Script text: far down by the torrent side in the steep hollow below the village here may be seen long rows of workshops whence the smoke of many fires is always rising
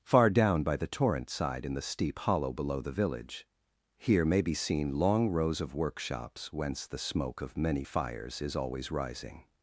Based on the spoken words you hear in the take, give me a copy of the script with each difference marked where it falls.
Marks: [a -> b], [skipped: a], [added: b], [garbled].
far down by the torrent side in the steep hollow below the village here may be seen long rows of workshops whence the smoke of many fires is always rising